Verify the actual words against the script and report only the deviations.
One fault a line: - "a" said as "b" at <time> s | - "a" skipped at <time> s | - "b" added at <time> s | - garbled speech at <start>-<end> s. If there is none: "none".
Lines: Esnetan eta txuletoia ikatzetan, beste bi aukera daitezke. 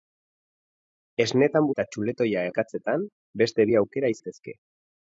none